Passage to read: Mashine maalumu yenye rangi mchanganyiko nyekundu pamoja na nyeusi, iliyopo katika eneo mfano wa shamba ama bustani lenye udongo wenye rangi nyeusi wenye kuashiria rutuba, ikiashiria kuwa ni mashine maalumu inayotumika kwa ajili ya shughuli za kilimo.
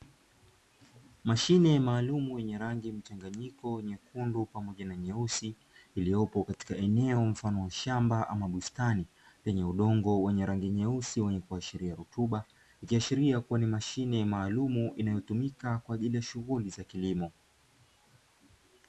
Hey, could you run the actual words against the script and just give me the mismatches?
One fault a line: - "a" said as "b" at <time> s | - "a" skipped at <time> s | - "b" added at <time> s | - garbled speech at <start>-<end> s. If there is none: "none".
none